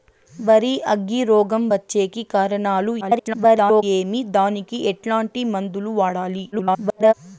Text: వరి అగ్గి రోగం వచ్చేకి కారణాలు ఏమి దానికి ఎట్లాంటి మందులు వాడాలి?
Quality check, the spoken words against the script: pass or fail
fail